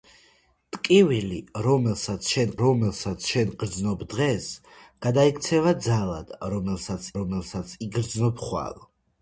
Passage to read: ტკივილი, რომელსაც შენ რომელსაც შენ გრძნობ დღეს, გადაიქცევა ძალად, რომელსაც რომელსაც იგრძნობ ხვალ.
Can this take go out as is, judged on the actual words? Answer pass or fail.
pass